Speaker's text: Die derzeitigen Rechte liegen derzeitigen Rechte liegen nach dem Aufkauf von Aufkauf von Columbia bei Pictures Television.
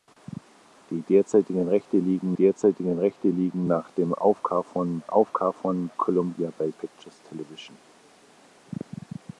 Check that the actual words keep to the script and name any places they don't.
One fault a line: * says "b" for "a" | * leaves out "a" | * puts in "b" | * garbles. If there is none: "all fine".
all fine